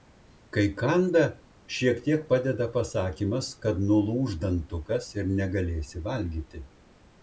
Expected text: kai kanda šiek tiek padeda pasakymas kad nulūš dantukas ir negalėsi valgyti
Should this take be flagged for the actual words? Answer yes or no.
no